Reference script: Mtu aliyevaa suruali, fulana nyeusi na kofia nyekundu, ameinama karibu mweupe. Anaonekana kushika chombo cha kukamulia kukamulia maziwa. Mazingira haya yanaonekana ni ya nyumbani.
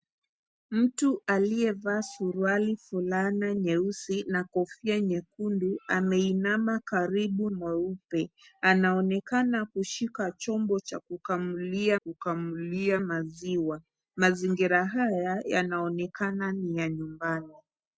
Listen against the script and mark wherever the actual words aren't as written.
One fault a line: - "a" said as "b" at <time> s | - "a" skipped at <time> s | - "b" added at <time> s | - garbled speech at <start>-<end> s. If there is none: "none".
none